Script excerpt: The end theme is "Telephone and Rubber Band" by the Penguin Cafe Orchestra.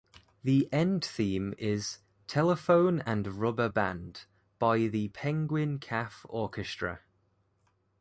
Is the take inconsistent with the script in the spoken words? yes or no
no